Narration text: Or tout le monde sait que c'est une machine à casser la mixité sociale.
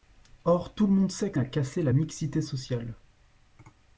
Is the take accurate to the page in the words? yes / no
no